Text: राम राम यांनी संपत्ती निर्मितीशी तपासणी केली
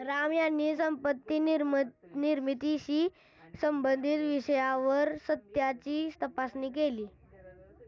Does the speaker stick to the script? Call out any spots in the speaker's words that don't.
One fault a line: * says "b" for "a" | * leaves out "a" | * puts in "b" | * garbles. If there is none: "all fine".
* leaves out "राम"
* puts in "संबंधित विषयावर सत्याची"